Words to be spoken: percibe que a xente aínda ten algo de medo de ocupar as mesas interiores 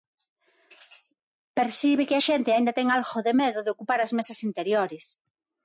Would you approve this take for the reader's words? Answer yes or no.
yes